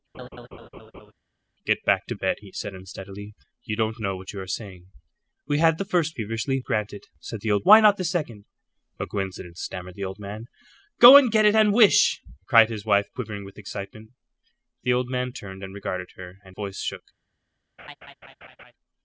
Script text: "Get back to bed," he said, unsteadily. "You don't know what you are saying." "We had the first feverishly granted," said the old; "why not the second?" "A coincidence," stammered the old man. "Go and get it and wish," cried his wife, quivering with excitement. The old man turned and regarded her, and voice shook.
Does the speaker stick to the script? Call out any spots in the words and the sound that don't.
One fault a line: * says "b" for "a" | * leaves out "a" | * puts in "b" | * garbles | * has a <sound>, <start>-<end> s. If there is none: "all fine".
* has a laugh, 0.1-1.1 s
* has a laugh, 17.8-18.7 s